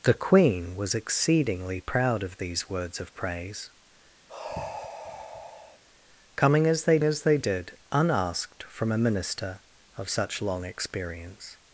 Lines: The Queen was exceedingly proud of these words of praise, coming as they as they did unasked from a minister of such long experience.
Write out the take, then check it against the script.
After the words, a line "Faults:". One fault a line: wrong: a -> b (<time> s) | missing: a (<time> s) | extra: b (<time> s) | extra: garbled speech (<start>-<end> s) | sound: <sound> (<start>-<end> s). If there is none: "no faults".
The Queen was exceedingly proud of these words of praise, coming as they as they did unasked from a minister of such long experience.
Faults:
sound: sigh (4.3-5.8 s)